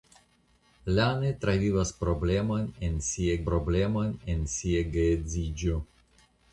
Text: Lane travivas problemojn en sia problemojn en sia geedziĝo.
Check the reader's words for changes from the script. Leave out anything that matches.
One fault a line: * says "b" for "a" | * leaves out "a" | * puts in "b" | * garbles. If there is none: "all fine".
all fine